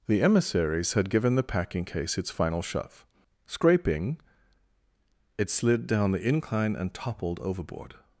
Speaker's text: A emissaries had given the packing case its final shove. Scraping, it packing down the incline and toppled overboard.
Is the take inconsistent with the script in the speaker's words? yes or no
yes